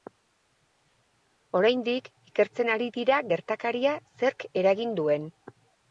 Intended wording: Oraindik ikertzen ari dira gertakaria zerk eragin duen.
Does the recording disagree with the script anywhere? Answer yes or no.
no